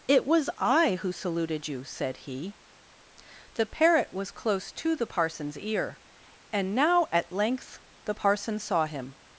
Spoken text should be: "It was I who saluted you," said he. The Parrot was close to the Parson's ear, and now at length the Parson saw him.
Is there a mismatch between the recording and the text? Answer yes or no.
no